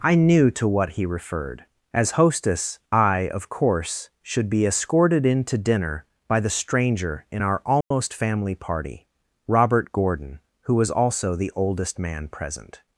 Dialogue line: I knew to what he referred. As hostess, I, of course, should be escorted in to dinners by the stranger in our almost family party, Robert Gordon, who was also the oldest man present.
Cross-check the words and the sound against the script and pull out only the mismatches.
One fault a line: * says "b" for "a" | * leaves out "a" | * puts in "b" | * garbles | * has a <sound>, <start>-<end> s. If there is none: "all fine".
* says "dinner" for "dinners"
* has a dropout, 7.8-7.9 s